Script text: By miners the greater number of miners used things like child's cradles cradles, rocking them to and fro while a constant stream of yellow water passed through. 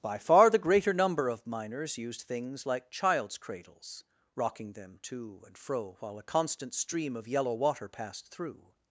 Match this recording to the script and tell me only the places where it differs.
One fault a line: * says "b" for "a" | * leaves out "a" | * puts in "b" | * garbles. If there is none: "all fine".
* says "far" for "miners"
* leaves out "cradles"